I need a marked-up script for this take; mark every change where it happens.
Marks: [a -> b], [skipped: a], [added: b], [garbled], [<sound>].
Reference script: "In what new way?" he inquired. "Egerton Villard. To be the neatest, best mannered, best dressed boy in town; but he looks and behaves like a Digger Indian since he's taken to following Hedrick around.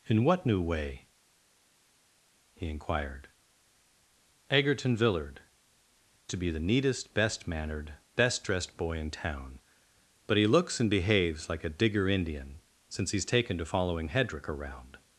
"In what new way?" he inquired. "Egerton Villard. To be the neatest, best mannered, best dressed boy in town; but he looks and behaves like a Digger Indian since he's taken to following Hedrick around.